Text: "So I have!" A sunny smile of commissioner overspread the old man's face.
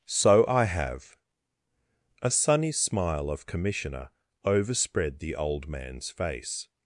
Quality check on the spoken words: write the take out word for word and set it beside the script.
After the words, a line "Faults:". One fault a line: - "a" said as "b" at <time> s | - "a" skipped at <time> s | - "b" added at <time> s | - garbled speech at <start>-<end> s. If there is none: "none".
"So I have!" A sunny smile of commissioner overspread the old man's face.
Faults:
none